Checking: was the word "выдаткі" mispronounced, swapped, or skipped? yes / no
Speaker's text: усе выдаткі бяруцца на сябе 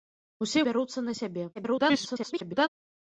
yes